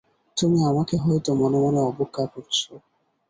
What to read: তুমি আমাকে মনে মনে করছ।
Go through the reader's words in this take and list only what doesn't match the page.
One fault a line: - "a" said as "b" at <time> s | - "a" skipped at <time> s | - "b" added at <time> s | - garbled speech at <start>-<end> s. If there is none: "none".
- "হয়তো" added at 1.0 s
- "অবজ্ঞা" added at 1.9 s